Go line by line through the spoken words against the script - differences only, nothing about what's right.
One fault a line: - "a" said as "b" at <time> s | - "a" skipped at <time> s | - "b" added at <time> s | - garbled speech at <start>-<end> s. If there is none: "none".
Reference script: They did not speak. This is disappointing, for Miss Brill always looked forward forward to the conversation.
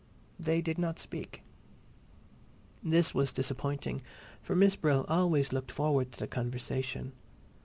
- "is" said as "was" at 3.1 s
- "forward" skipped at 6.1 s